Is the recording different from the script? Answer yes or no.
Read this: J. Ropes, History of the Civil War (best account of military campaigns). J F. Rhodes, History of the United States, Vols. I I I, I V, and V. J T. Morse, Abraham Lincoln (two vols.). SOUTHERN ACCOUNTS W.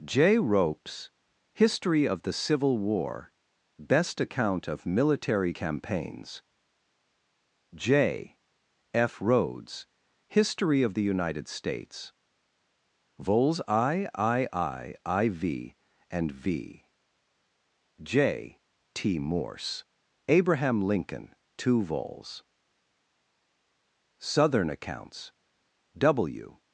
no